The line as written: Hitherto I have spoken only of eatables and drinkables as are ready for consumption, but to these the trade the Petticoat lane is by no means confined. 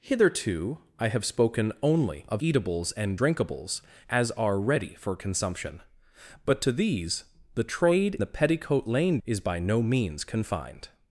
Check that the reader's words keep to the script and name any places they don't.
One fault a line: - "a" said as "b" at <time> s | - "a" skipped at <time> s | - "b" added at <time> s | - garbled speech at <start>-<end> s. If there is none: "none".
none